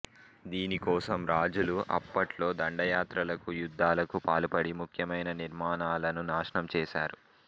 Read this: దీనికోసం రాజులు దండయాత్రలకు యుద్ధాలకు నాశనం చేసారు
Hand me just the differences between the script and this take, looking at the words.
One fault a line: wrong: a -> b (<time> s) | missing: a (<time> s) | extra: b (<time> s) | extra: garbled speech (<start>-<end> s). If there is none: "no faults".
extra: అప్పట్లో (2.0 s)
extra: పాల్పడి ముఖ్యమైన నిర్మాణాలను (4.3 s)